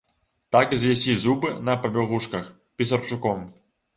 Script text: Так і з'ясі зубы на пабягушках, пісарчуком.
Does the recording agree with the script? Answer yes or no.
yes